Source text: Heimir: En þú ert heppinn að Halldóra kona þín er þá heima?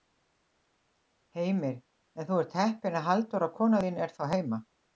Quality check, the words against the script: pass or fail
pass